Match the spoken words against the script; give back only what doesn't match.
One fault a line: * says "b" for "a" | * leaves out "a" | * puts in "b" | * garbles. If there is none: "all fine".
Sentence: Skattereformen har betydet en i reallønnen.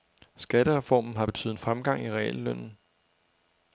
* puts in "fremgang"